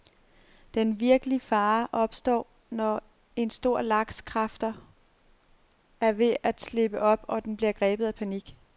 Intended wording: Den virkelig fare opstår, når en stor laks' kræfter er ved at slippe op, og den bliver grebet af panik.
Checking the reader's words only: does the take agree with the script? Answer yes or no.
yes